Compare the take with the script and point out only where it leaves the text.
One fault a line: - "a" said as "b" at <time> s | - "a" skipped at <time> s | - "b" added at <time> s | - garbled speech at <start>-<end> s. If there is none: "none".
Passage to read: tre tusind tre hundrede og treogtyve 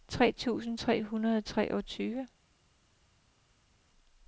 none